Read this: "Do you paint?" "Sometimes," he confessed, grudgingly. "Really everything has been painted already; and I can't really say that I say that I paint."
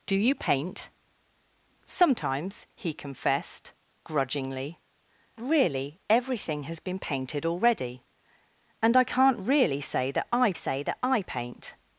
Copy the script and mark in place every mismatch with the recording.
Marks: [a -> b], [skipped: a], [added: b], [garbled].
"Do you paint?" "Sometimes," he confessed, grudgingly. "Really everything has been painted already; and I can't really say that I say that I paint."